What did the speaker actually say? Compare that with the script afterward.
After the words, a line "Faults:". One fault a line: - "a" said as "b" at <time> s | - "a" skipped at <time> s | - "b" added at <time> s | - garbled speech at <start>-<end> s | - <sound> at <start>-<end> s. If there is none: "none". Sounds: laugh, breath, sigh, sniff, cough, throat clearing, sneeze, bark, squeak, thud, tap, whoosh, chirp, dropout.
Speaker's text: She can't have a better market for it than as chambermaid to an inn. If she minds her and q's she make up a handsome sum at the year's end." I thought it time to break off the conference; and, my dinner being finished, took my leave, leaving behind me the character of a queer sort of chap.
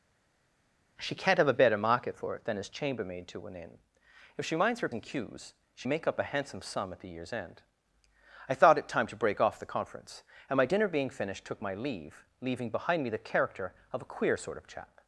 She can't have a better market for it than as chambermaid to an inn. If she minds her and q's she make up a handsome sum at the year's end." I thought it time to break off the conference; and, my dinner being finished, took my leave, leaving behind me the character of a queer sort of chap.
Faults:
none